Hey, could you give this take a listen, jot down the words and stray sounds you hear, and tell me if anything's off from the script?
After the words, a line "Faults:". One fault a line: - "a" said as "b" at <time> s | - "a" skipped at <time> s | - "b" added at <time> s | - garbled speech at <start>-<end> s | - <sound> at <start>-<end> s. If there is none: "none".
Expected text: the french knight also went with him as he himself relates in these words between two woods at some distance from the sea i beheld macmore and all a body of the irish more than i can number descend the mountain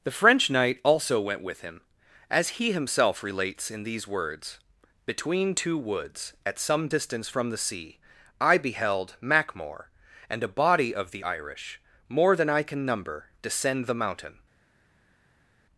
the french knight also went with him as he himself relates in these words between two woods at some distance from the sea i beheld macmore and a body of the irish more than i can number descend the mountain
Faults:
- "all" skipped at 10.4 s